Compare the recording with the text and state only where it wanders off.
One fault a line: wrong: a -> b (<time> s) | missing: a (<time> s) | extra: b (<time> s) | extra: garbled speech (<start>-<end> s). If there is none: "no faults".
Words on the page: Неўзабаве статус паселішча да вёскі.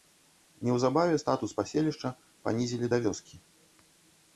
extra: панізілі (2.5 s)